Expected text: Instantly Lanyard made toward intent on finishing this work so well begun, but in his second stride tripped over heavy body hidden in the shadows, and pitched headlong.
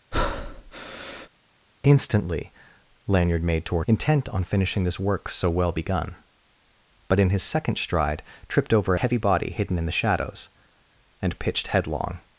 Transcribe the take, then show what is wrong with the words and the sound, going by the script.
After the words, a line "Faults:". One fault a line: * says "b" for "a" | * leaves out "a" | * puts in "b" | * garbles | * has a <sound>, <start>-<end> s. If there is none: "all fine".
Instantly Lanyard made toward intent on finishing this work so well begun, but in his second stride tripped over heavy body hidden in the shadows, and pitched headlong.
Faults:
* has a breath, 0.1-1.3 s